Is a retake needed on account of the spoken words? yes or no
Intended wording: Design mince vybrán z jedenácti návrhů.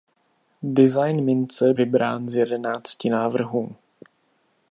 no